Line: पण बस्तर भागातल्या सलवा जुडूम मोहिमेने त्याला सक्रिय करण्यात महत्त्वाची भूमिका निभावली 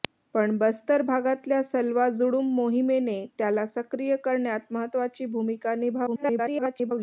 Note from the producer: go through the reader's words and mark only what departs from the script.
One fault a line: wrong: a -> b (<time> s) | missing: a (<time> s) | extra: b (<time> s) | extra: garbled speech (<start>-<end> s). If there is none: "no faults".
extra: garbled speech (6.1-6.9 s)